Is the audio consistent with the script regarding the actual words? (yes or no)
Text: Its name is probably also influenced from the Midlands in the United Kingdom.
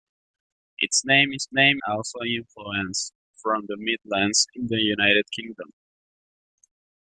no